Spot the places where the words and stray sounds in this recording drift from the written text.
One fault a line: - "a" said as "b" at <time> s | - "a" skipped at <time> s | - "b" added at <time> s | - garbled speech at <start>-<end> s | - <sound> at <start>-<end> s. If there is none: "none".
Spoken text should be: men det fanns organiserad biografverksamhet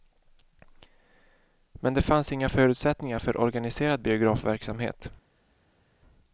- "inga förutsättningar för" added at 2.3 s